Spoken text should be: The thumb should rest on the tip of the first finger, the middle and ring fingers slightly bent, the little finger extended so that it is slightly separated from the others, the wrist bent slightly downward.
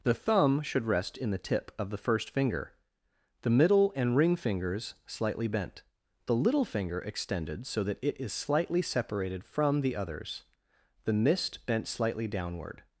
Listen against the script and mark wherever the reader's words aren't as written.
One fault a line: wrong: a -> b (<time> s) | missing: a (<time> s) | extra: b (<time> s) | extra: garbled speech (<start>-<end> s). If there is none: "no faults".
wrong: on -> in (1.2 s)
wrong: wrist -> mist (11.1 s)